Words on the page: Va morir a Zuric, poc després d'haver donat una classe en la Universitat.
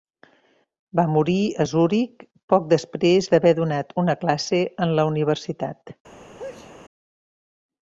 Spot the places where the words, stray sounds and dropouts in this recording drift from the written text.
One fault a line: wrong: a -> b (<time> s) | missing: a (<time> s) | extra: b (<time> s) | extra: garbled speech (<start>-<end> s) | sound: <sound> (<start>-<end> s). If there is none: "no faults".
sound: sneeze (6.4-6.7 s)